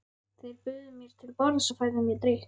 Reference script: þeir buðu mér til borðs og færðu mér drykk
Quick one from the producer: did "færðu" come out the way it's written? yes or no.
yes